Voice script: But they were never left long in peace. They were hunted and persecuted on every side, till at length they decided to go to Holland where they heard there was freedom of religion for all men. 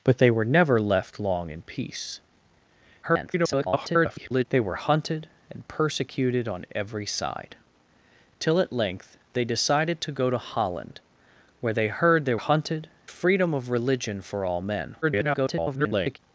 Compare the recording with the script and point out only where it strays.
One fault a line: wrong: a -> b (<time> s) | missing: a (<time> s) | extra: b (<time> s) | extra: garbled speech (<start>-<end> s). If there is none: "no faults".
extra: garbled speech (3.0-4.5 s)
wrong: was -> hunted (12.4 s)
extra: garbled speech (15.0-16.2 s)